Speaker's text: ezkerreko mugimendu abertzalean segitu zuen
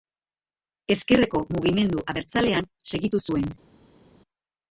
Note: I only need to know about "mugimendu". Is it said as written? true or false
true